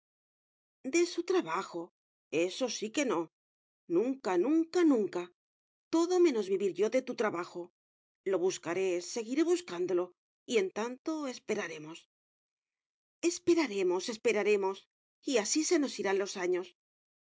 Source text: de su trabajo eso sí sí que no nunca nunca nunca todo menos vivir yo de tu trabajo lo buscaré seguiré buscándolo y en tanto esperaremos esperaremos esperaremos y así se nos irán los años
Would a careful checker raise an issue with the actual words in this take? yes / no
yes